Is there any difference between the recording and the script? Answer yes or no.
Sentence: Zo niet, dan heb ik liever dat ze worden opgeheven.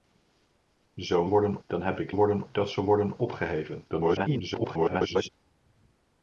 yes